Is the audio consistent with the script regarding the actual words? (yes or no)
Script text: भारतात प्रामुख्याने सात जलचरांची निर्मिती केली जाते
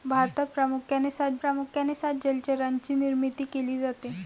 no